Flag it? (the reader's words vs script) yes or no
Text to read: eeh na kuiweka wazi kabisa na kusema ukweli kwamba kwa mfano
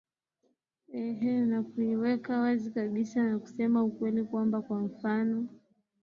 no